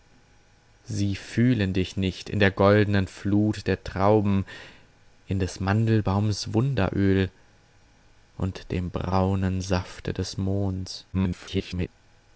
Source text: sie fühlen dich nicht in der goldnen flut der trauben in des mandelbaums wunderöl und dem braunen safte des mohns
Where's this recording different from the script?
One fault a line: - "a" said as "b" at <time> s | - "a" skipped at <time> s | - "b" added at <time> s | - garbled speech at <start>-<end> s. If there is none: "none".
- garbled speech at 11.1-11.9 s